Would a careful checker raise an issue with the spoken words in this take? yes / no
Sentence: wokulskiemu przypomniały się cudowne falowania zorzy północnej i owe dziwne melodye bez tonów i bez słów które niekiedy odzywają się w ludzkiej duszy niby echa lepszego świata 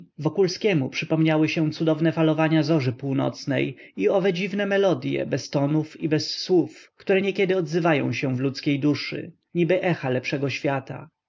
no